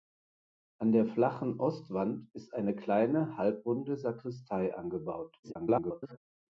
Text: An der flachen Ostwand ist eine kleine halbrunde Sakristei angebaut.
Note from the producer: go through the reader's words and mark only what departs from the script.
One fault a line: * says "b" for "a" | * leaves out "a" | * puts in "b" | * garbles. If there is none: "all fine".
* garbles